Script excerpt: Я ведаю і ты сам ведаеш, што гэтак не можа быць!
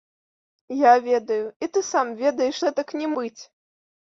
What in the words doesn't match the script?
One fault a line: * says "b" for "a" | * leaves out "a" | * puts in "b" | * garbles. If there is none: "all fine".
* leaves out "што"
* leaves out "можа"